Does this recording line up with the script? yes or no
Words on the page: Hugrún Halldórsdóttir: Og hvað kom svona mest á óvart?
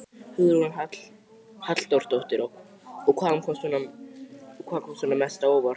yes